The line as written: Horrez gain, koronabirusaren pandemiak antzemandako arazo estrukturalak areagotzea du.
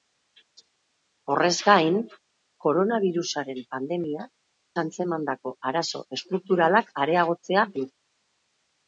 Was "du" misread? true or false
false